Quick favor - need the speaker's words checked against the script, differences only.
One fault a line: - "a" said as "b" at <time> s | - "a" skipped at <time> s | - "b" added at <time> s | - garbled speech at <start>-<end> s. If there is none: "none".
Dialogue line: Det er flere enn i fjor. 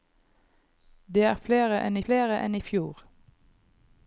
- "flere enn" added at 2.1 s